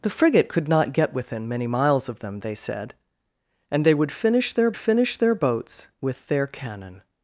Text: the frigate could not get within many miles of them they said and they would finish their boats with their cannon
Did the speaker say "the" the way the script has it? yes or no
yes